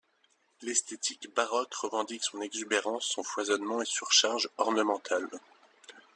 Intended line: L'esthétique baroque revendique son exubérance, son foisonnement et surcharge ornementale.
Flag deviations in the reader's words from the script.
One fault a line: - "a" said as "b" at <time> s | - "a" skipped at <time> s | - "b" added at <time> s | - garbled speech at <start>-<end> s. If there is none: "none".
none